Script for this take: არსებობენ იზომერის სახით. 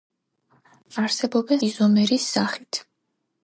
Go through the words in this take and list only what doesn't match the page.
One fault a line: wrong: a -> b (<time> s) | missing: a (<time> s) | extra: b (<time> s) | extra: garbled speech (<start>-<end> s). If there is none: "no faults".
no faults